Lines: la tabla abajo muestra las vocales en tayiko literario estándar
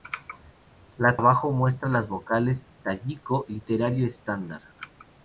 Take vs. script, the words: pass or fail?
fail